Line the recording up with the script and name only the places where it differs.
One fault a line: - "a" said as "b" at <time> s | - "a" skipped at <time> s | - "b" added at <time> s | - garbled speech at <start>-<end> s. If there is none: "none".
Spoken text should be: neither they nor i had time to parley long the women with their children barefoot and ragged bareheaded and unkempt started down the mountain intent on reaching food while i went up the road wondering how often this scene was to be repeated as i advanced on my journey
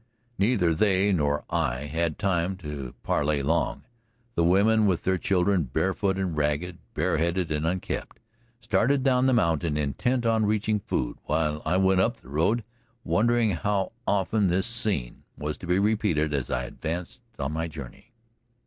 none